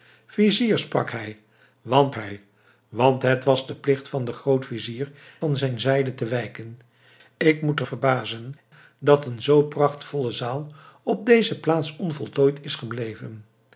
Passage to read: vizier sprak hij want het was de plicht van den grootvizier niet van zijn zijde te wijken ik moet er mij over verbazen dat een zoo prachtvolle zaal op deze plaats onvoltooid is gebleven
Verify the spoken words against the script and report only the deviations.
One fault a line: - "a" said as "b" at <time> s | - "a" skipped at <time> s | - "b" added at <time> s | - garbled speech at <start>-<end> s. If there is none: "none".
- "hij want" added at 2.1 s
- "niet" skipped at 5.1 s
- "mij over" skipped at 7.9 s